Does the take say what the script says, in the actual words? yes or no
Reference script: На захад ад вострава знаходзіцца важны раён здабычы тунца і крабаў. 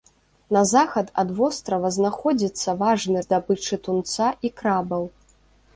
no